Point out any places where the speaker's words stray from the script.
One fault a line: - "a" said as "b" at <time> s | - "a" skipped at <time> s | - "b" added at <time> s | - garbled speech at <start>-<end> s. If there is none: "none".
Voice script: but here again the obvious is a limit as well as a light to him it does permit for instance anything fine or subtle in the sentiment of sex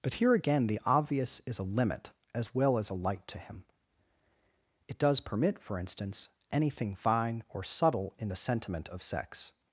none